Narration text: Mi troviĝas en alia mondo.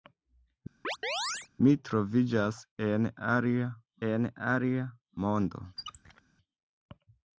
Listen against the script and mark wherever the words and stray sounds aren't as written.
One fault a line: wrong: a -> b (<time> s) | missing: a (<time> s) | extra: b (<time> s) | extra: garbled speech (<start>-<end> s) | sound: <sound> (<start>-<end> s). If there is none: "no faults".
sound: chirp (0.8-1.5 s)
extra: en alia (4.1 s)
sound: squeak (5.8-6.2 s)